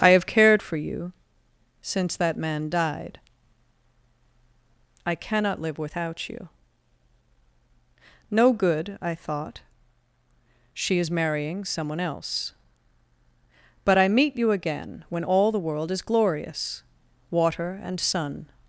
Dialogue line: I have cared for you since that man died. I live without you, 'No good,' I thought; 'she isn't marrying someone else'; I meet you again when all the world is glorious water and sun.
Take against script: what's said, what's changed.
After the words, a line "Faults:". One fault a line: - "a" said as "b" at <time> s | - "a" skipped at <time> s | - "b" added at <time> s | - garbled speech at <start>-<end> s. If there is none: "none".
I have cared for you since that man died. I cannot live without you, 'No good,' I thought; 'she is marrying someone else'; but I meet you again when all the world is glorious water and sun.
Faults:
- "cannot" added at 5.1 s
- "isn't" said as "is" at 11.0 s
- "but" added at 13.8 s